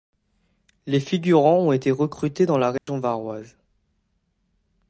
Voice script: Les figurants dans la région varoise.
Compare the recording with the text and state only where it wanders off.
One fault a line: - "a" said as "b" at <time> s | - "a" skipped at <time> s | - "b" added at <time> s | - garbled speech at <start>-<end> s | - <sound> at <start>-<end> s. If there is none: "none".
- "ont été recrutés" added at 1.6 s
- dropout at 2.8-2.9 s